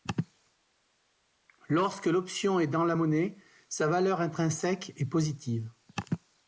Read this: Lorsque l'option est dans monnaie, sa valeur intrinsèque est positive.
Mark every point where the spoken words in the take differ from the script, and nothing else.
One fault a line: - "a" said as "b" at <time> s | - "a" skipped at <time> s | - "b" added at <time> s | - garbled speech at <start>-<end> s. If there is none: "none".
- "la" added at 2.9 s